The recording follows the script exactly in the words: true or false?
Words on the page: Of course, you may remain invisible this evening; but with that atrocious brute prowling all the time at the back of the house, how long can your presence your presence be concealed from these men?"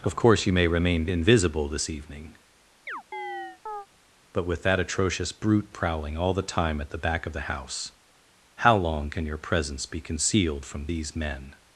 false